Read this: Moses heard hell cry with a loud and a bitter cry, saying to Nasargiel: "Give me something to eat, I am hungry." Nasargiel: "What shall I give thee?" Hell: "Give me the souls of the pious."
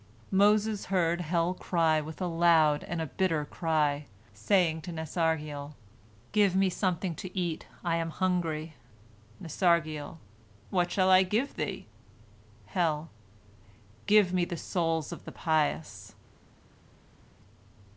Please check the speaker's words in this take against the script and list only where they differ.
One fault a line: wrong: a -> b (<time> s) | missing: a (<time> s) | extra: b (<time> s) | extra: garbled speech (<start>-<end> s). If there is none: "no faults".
no faults